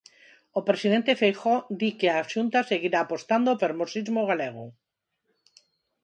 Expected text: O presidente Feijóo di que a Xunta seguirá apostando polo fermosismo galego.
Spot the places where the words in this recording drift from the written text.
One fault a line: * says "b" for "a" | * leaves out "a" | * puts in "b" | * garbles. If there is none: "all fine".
* leaves out "polo"